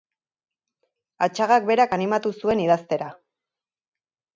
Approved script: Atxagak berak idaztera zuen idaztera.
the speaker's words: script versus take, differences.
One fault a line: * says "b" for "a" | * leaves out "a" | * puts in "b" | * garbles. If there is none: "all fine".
* says "animatu" for "idaztera"